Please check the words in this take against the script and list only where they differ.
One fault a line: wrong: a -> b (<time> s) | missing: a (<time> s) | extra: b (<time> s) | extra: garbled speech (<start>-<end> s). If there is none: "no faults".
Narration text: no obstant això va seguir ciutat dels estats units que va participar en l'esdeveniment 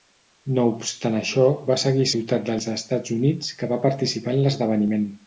no faults